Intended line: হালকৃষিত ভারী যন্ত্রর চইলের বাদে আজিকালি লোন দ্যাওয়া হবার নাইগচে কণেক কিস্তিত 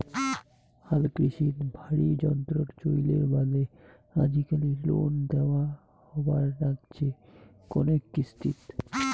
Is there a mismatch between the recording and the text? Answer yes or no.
no